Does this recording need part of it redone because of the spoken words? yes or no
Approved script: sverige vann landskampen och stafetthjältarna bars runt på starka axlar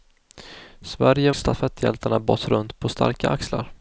yes